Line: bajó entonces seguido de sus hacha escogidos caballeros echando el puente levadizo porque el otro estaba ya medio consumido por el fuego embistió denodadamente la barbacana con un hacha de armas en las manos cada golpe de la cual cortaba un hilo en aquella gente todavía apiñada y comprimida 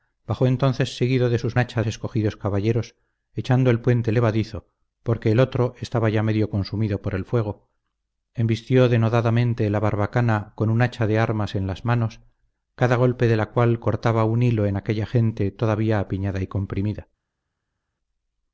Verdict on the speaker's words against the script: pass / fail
pass